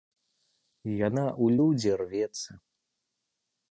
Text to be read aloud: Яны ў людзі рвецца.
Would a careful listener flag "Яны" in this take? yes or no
yes